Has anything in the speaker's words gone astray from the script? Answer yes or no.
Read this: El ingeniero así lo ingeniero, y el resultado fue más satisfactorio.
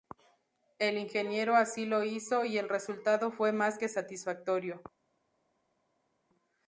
yes